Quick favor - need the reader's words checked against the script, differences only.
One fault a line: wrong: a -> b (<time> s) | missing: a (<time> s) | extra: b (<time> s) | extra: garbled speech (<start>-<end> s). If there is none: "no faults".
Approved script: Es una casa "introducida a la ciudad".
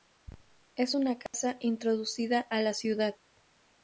no faults